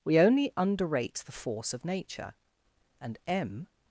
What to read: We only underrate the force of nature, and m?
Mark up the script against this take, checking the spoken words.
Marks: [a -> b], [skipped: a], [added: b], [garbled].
We only underrate the force of nature, and m?